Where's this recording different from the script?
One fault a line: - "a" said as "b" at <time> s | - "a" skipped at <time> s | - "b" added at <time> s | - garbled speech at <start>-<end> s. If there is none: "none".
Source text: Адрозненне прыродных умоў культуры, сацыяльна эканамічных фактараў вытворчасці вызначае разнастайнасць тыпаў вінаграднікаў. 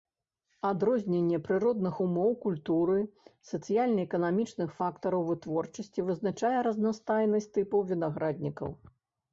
none